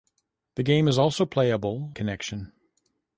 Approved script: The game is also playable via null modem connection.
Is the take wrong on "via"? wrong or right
wrong